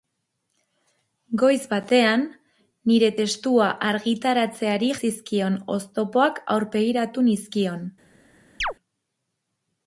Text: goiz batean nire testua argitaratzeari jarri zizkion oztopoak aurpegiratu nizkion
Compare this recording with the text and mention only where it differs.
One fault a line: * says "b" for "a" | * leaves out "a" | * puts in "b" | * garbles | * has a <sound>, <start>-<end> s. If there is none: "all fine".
* leaves out "jarri"
* has a chirp, 8.6-8.7 s